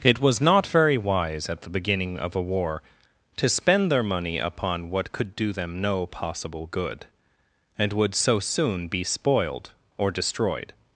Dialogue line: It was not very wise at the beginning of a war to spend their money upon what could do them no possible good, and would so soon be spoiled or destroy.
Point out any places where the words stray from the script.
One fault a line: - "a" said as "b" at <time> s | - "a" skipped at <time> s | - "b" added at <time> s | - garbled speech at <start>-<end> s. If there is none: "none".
- "destroy" said as "destroyed" at 10.1 s